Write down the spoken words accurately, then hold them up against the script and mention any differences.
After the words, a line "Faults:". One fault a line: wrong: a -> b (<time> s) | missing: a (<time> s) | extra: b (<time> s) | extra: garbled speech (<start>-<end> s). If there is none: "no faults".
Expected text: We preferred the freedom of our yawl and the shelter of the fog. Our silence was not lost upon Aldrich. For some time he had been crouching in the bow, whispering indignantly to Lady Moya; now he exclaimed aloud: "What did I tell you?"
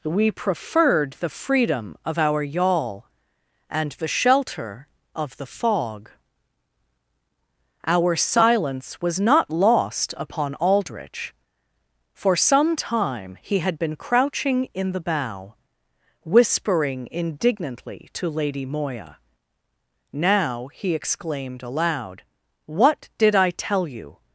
We preferred the freedom of our yawl and the shelter of the fog. Our silence was not lost upon Aldrich. For some time he had been crouching in the bow, whispering indignantly to Lady Moya; now he exclaimed aloud: "What did I tell you?"
Faults:
no faults